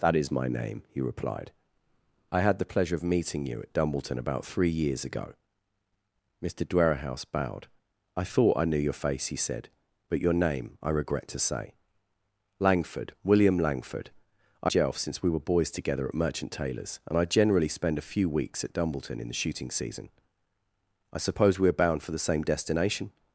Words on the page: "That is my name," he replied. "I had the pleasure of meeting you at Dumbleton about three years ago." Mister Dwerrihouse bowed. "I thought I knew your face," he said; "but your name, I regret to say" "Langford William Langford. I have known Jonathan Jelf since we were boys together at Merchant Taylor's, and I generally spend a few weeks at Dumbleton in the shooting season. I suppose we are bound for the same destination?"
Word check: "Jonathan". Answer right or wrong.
wrong